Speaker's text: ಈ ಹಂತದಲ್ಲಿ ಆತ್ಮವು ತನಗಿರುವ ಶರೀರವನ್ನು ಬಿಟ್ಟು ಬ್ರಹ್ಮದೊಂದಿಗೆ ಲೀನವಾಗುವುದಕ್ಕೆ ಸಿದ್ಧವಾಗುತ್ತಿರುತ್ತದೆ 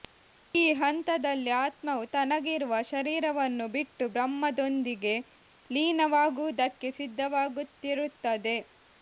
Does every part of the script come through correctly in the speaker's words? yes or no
yes